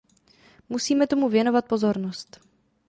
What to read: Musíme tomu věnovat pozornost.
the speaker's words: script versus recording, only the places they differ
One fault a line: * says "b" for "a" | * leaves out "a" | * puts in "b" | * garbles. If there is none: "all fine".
all fine